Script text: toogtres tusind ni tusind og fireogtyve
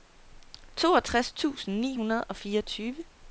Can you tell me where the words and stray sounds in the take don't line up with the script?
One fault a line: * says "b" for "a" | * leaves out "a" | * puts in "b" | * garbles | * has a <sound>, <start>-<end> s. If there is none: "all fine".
* says "hundrede" for "tusind"